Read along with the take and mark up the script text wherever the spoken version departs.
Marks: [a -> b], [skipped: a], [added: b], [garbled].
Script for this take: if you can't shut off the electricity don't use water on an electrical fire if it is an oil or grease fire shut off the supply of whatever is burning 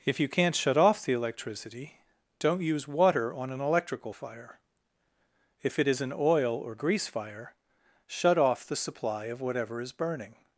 if you can't shut off the electricity don't use water on an electrical fire if it is an oil or grease fire shut off the supply of whatever is burning